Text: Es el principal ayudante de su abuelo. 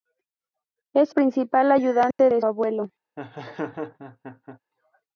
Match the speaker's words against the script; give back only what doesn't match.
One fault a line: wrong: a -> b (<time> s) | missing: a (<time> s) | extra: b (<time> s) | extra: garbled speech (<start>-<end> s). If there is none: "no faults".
missing: el (1.1 s)
missing: su (2.4 s)